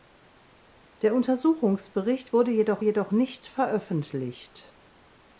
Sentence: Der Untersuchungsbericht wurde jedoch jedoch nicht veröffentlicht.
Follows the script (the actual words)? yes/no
yes